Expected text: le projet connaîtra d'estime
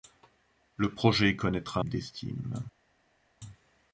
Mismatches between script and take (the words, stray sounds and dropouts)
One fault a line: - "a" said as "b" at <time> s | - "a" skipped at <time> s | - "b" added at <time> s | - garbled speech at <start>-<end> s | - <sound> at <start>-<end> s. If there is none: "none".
none